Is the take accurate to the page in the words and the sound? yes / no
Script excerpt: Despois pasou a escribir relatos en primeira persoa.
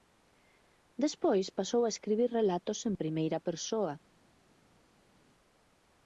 yes